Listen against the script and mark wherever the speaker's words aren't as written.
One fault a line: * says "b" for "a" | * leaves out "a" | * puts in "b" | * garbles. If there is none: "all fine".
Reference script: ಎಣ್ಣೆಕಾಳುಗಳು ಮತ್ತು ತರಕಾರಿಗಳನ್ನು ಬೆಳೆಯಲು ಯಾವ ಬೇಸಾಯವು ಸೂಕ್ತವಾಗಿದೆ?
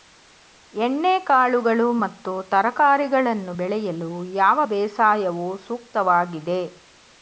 all fine